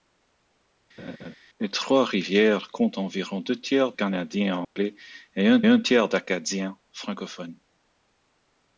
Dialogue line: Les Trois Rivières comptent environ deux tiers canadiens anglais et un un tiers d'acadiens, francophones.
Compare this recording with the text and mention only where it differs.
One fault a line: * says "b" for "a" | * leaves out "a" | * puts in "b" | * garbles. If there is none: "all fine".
all fine